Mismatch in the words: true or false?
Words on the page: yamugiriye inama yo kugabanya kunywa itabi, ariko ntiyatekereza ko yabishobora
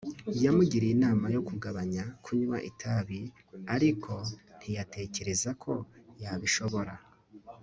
false